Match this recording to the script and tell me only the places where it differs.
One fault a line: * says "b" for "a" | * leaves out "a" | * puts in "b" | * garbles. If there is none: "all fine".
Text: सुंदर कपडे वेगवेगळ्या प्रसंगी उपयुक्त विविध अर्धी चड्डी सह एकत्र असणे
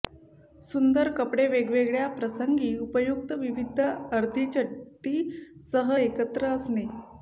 all fine